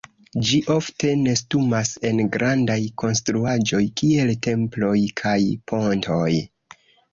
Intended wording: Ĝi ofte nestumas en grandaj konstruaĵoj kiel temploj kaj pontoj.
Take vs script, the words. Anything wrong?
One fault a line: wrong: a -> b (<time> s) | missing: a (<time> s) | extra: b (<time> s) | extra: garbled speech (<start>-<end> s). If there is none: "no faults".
no faults